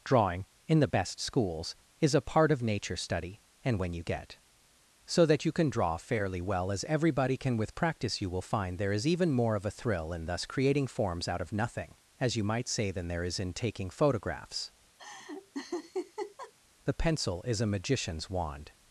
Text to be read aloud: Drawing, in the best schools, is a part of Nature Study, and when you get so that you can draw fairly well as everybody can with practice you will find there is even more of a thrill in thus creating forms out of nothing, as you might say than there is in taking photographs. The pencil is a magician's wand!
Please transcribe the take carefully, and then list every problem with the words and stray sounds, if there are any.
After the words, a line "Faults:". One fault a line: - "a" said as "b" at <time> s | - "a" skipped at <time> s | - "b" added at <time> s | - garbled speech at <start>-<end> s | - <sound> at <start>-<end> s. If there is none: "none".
Drawing, in the best schools, is a part of Nature Study, and when you get so that you can draw fairly well as everybody can with practice you will find there is even more of a thrill in thus creating forms out of nothing, as you might say than there is in taking photographs. The pencil is a magician's wand!
Faults:
- laugh at 15.0-16.5 s